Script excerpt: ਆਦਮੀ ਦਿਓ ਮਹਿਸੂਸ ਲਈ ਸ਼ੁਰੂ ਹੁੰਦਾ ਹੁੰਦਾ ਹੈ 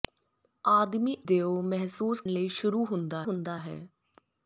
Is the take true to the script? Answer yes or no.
yes